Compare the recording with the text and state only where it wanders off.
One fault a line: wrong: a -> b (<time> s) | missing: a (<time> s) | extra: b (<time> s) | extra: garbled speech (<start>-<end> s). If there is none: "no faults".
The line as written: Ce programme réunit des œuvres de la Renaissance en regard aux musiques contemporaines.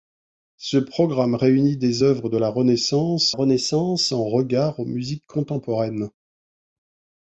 extra: Renaissance (3.3 s)